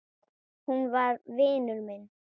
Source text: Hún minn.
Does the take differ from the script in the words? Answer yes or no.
yes